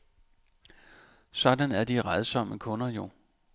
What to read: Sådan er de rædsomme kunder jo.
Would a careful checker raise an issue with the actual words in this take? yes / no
no